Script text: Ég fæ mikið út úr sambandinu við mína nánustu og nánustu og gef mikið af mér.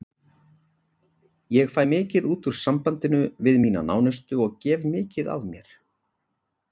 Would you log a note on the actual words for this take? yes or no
yes